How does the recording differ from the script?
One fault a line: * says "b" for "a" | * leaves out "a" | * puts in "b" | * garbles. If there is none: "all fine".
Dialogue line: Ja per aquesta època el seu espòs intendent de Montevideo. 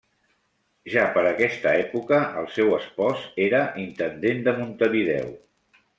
* puts in "era"